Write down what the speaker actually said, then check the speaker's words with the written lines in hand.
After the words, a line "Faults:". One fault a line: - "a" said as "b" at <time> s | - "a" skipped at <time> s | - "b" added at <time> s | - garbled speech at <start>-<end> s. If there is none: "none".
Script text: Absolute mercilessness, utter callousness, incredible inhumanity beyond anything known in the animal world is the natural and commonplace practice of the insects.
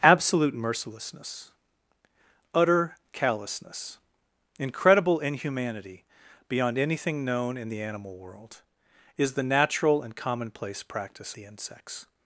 Absolute mercilessness, utter callousness, incredible inhumanity beyond anything known in the animal world is the natural and commonplace practice the insects.
Faults:
- "of" skipped at 11.4 s